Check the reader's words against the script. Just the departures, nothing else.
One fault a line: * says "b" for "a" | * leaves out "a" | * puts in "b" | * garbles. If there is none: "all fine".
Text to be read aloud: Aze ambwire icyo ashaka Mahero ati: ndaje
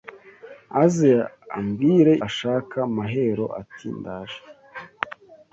* leaves out "icyo"